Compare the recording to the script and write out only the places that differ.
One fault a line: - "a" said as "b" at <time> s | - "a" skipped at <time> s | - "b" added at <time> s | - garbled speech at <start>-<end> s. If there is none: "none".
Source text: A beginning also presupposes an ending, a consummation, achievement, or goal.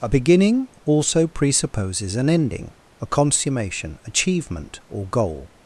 none